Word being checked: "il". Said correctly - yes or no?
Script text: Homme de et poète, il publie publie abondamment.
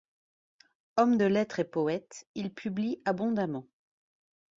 yes